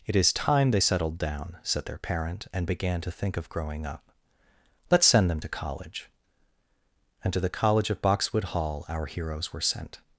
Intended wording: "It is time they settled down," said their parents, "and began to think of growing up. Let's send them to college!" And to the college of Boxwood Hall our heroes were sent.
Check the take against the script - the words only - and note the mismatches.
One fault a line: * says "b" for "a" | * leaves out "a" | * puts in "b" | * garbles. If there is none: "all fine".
* says "parent" for "parents"